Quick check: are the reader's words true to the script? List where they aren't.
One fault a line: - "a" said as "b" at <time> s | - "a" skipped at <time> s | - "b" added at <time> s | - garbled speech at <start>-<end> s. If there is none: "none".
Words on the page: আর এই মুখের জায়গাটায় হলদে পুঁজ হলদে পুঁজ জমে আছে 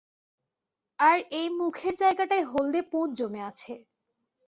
- "হলদে পুঁজ" skipped at 3.1 s